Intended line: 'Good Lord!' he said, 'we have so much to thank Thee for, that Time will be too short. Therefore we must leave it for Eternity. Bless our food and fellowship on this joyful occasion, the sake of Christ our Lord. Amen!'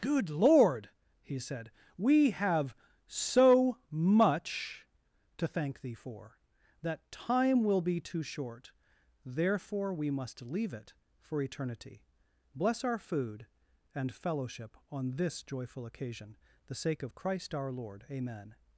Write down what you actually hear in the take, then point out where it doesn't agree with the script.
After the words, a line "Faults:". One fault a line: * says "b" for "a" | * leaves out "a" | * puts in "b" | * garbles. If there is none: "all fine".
'Good Lord!' he said, 'we have so much to thank Thee for, that Time will be too short. Therefore we must leave it for Eternity. Bless our food and fellowship on this joyful occasion, the sake of Christ our Lord. Amen!'
Faults:
all fine